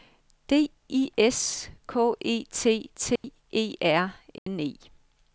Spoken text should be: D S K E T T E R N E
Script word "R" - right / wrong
right